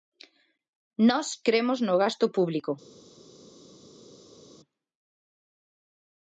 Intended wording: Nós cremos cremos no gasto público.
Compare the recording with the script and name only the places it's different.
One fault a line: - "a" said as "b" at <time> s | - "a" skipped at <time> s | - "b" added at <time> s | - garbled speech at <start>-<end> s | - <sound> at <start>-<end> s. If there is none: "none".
- "cremos" skipped at 1.8 s